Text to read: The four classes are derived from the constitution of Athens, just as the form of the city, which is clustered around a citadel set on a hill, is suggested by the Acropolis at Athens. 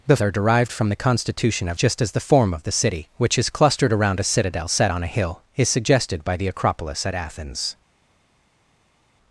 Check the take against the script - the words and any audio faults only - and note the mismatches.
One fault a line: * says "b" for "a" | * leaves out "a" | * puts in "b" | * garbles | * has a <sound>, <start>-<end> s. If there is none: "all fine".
* leaves out "four classes"
* leaves out "Athens"